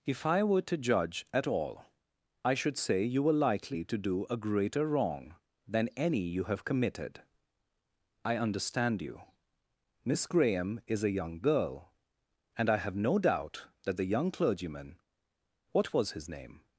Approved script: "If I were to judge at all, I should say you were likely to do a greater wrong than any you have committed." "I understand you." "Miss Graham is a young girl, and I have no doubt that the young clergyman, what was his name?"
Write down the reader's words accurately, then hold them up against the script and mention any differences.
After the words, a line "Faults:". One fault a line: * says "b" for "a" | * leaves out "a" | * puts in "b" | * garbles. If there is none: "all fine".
"If I were to judge at all, I should say you were likely to do a greater wrong than any you have committed." "I understand you." "Miss Graham is a young girl, and I have no doubt that the young clergyman, what was his name?"
Faults:
all fine